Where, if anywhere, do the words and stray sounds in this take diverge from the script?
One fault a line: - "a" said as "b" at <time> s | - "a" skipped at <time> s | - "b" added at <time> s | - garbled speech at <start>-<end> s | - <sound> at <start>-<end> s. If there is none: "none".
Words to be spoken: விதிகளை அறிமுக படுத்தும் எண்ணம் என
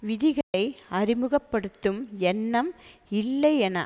- dropout at 0.4-0.5 s
- "இல்லை" added at 3.1 s